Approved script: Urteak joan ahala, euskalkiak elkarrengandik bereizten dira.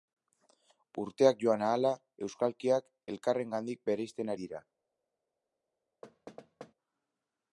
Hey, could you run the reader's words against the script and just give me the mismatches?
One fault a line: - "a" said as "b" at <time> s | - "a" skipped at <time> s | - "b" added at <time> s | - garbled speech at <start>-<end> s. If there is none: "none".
none